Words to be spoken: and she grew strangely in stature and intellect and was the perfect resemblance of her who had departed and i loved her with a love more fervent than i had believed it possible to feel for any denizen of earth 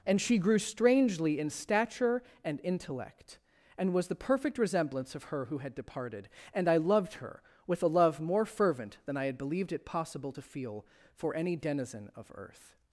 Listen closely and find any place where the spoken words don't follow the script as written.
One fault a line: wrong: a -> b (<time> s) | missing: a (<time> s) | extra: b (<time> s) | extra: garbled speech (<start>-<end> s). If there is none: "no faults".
no faults